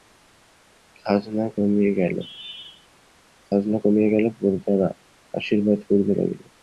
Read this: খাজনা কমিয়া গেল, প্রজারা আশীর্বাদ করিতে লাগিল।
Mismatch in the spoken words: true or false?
false